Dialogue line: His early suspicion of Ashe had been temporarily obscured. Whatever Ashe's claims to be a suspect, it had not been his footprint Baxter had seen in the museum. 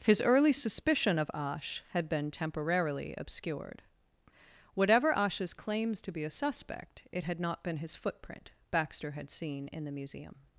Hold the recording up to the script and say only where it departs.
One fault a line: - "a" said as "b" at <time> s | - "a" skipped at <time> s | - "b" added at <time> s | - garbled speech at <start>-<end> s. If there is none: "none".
none